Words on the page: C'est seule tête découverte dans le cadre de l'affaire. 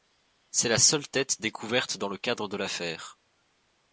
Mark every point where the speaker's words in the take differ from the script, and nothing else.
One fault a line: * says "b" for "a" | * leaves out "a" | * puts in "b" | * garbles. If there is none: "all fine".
* puts in "la"